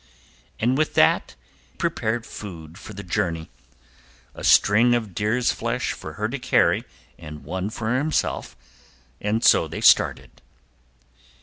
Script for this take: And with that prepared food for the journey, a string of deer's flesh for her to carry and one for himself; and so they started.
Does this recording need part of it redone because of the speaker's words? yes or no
no